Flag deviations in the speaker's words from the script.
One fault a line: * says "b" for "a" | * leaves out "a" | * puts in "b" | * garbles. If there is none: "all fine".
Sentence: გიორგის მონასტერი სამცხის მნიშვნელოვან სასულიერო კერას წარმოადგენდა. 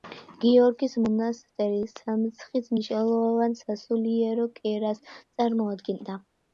all fine